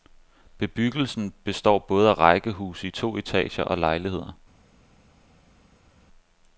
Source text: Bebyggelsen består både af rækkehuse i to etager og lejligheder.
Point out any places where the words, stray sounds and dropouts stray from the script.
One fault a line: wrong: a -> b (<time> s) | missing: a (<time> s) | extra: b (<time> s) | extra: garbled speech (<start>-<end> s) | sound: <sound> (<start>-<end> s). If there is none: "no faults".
no faults